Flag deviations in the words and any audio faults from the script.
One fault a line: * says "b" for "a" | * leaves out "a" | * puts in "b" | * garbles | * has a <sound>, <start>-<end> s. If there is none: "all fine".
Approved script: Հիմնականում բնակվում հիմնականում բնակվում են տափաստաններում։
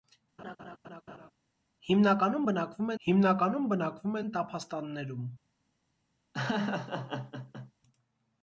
* has a laugh, 0.4-1.3 s
* has a laugh, 6.3-7.7 s